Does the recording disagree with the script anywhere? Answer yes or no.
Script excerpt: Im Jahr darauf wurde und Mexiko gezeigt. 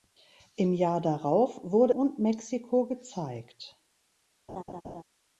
no